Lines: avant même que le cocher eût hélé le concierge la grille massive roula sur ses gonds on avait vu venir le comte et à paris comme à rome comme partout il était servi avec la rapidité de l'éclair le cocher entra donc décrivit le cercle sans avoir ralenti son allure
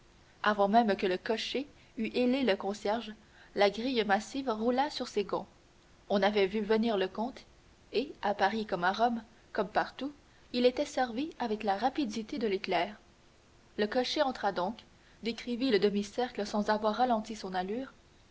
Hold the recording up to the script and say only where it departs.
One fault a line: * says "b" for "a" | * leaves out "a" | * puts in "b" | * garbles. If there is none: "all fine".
* puts in "demi"